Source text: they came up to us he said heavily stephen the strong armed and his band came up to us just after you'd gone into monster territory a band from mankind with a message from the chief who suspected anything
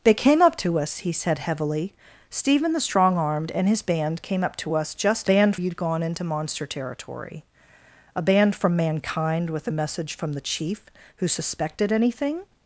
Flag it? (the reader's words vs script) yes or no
yes